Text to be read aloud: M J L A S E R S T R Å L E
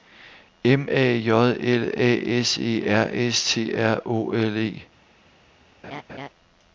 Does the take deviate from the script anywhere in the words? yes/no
yes